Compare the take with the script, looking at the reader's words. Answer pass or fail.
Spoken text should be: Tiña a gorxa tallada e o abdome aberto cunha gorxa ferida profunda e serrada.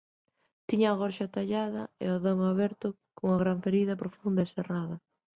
fail